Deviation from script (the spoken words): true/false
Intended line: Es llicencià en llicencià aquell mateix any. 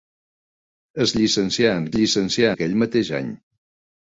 false